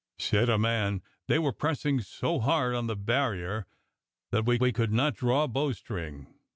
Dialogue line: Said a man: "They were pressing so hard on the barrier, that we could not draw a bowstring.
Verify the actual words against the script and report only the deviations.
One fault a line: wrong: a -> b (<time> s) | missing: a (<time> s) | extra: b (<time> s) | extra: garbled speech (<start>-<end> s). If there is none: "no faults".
extra: we (4.6 s)